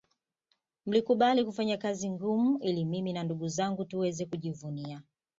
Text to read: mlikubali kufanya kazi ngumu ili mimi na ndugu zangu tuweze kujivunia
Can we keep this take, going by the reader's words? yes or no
yes